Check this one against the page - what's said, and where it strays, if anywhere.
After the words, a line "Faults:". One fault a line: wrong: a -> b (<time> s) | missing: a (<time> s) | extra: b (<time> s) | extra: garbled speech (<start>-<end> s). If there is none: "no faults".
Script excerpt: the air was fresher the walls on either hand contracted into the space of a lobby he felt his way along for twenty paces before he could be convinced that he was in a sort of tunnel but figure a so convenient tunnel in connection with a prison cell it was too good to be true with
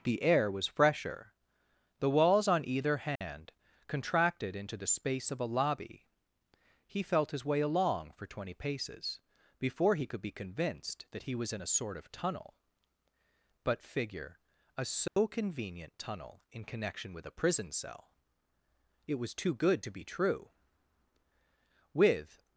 the air was fresher the walls on either hand contracted into the space of a lobby he felt his way along for twenty paces before he could be convinced that he was in a sort of tunnel but figure a so convenient tunnel in connection with a prison cell it was too good to be true with
Faults:
no faults